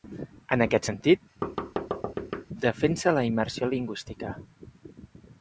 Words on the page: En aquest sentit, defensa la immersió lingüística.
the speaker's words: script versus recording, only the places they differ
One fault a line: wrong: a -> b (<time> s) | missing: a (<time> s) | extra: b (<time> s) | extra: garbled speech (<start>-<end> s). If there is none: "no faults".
no faults